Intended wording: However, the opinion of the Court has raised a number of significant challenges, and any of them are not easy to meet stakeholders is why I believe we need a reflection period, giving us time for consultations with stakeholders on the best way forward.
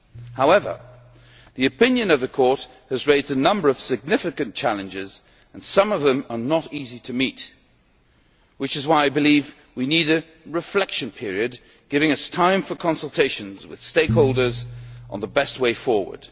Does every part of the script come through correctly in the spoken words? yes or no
no